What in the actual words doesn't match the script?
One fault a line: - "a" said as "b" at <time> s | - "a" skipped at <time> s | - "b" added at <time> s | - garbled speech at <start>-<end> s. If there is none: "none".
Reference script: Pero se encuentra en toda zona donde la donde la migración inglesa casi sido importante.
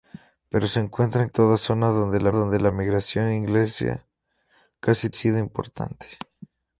none